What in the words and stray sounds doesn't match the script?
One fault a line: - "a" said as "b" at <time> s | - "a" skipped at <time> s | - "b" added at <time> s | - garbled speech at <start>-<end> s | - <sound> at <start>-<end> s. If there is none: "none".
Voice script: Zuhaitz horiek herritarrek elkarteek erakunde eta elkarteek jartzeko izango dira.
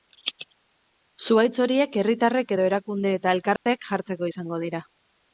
- "elkarteek" said as "edo" at 2.5 s
- dropout at 3.6-3.7 s